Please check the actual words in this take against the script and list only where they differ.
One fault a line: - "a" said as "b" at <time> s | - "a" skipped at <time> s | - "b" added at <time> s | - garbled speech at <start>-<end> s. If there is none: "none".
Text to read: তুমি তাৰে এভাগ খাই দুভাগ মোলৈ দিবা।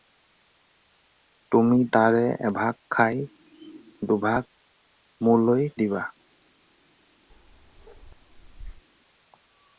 none